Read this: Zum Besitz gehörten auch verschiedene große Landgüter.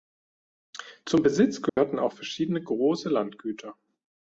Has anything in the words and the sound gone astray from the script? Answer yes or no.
yes